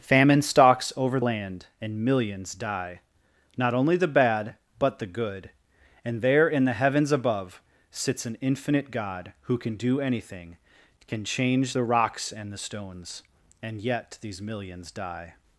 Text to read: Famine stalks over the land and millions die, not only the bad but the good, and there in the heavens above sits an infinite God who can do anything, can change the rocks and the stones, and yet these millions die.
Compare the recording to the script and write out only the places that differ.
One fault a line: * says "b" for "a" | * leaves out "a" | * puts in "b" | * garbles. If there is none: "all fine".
* leaves out "the"